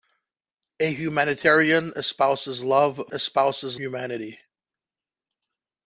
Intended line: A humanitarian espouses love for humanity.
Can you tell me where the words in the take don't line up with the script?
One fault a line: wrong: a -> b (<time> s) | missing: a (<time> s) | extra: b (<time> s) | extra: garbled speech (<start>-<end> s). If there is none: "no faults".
wrong: for -> espouses (3.1 s)